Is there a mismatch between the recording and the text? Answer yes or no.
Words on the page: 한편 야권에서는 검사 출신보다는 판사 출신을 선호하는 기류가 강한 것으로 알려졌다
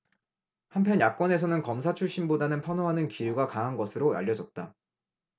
yes